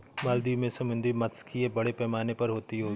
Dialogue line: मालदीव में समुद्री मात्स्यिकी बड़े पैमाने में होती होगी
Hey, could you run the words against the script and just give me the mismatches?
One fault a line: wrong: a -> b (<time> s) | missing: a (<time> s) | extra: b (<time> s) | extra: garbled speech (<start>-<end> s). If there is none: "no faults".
wrong: में -> पर (2.3 s)